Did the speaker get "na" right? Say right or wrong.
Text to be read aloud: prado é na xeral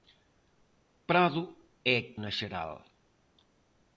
right